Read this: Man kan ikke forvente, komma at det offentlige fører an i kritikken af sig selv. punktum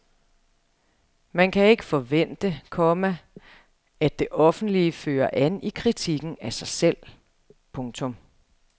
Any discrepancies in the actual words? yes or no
no